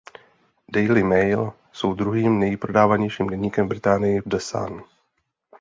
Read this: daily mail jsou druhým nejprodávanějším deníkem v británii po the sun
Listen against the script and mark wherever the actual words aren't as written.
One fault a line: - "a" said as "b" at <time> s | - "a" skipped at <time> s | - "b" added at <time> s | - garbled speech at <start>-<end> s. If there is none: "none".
- "po" skipped at 4.2 s